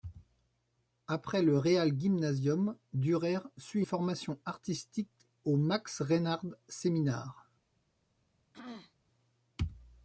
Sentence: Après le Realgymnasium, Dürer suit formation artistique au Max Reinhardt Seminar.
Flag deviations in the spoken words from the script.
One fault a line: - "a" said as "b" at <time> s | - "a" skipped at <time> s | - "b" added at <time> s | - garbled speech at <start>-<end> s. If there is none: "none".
none